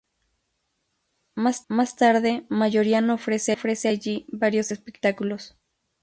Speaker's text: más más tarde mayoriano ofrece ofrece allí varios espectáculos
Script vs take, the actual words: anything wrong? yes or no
no